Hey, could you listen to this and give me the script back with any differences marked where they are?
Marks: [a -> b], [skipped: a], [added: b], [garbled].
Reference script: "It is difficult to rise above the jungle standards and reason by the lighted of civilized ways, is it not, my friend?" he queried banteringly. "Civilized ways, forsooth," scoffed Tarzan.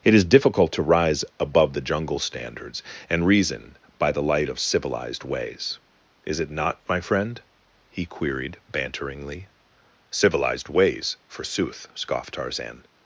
"It is difficult to rise above the jungle standards and reason by the [lighted -> light] of civilized ways, is it not, my friend?" he queried banteringly. "Civilized ways, forsooth," scoffed Tarzan.